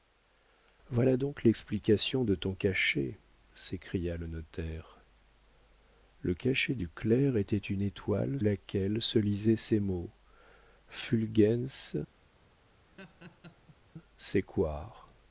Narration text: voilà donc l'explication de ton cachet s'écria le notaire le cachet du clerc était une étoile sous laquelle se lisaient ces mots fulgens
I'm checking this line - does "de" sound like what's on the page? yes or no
yes